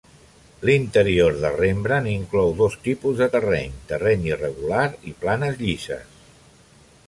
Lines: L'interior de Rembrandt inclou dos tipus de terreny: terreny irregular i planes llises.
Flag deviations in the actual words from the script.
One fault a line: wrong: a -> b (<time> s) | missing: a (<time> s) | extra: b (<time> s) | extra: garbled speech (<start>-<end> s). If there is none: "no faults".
no faults